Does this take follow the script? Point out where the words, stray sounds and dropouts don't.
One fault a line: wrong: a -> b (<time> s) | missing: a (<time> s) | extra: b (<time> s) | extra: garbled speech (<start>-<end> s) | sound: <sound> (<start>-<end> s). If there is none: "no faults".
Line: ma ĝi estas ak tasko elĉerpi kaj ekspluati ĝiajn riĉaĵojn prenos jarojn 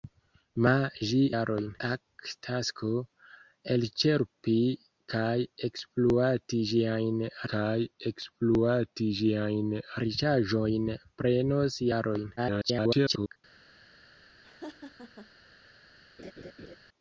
wrong: estas -> jarojn (1.3 s)
extra: kaj ekspluati ĝiajn (7.6 s)
extra: garbled speech (12.4-13.4 s)
sound: laugh (14.4-15.3 s)
sound: laugh (16.2-16.8 s)